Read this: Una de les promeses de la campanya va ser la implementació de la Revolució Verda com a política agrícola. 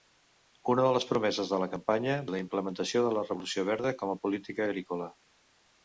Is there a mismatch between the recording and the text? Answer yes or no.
yes